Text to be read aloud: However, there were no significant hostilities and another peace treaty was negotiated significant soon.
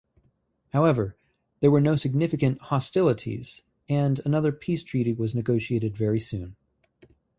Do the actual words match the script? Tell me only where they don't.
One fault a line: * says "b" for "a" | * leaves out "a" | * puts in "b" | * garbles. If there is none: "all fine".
* says "very" for "significant"